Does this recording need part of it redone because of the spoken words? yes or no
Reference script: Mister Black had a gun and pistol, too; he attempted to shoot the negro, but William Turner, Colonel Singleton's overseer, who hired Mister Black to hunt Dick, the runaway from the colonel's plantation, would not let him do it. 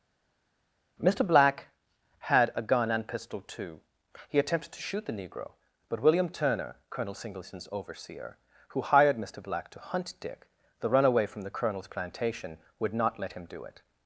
no